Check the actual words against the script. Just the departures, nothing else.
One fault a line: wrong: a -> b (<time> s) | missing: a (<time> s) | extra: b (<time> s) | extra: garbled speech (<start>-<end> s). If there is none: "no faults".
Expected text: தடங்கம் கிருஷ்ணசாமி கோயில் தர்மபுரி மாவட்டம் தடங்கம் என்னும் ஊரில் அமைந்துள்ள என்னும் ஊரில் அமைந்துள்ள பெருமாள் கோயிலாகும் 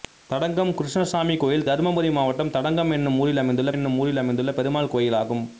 no faults